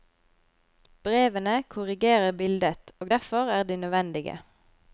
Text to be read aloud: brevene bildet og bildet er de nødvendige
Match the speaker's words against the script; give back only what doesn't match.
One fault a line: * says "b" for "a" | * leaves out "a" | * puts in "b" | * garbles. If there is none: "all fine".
* puts in "korrigerer"
* says "derfor" for "bildet"